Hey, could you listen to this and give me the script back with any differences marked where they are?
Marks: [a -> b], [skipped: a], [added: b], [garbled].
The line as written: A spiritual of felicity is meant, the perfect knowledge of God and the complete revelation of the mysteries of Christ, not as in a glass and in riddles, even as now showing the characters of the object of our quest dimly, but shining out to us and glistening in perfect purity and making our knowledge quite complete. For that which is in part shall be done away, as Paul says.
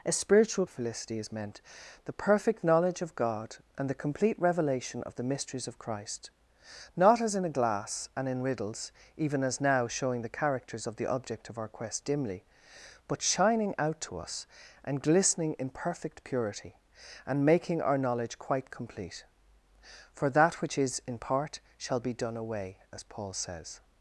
A spiritual of felicity is meant, the perfect knowledge of God and the complete revelation of the mysteries of Christ, not as in a glass and in riddles, even as now showing the characters of the object of our quest dimly, but shining out to us and glistening in perfect purity and making our knowledge quite complete. For that which is in part shall be done away, as Paul says.